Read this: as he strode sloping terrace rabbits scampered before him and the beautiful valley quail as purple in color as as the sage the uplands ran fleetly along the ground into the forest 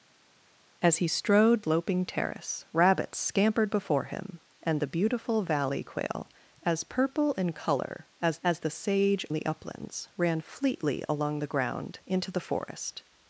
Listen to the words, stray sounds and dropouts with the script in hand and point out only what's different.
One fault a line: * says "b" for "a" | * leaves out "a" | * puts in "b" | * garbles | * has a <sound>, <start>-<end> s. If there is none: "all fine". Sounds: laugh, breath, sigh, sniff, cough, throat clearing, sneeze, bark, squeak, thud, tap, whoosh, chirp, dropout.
all fine